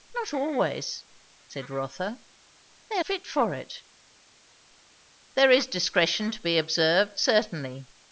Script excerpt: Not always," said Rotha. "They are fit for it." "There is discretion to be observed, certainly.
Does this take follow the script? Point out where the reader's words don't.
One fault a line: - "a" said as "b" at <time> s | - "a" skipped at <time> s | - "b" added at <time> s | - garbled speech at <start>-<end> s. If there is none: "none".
none